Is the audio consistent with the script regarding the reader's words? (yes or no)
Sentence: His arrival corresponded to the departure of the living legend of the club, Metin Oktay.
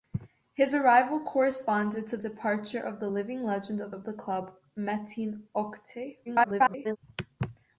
no